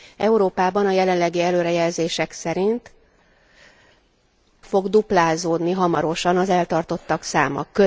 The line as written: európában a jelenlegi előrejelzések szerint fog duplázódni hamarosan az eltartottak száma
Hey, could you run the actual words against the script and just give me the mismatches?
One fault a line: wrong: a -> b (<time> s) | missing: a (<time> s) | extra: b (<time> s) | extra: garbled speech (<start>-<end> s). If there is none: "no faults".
no faults